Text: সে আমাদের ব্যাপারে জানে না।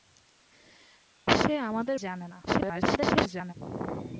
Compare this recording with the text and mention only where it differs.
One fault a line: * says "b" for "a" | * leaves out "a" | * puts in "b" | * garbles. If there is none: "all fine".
* leaves out "ব্যাপারে"
* garbles